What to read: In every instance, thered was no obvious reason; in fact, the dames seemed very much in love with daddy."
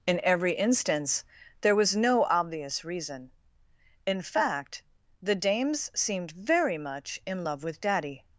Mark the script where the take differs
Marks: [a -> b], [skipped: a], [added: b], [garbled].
In every instance, [thered -> there] was no obvious reason; in fact, the dames seemed very much in love with daddy."